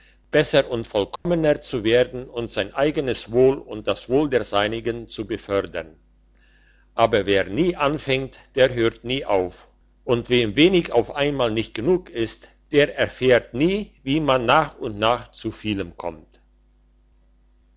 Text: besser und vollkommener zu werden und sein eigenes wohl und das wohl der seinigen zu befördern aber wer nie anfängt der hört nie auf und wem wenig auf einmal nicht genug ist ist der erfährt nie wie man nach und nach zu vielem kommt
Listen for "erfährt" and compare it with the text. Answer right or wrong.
right